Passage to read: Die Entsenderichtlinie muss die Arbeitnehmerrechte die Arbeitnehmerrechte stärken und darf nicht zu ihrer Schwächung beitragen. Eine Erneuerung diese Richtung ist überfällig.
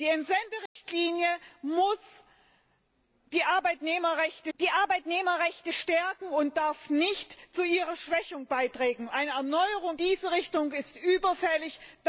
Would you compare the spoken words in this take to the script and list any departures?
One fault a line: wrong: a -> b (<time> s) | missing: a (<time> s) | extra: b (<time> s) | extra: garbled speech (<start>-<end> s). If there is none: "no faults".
no faults